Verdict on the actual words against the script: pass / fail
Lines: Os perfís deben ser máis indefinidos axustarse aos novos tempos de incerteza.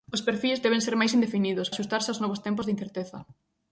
pass